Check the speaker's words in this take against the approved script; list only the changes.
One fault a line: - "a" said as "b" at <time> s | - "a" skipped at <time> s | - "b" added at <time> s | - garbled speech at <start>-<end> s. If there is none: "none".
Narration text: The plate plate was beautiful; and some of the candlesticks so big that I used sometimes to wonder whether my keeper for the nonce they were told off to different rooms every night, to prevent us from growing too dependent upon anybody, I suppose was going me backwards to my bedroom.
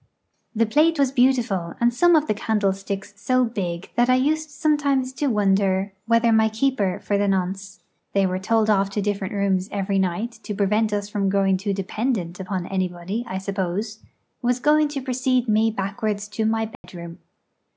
- "plate" skipped at 1.0 s
- "to precede" added at 14.9 s